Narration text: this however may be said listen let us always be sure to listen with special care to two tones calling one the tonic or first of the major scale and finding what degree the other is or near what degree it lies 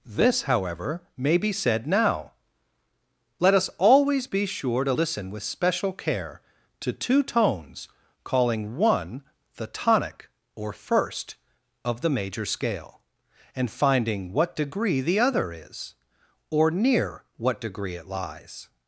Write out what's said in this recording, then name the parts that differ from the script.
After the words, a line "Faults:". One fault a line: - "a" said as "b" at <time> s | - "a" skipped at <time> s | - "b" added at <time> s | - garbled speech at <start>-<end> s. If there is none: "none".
this however may be said now let us always be sure to listen with special care to two tones calling one the tonic or first of the major scale and finding what degree the other is or near what degree it lies
Faults:
- "listen" said as "now" at 1.9 s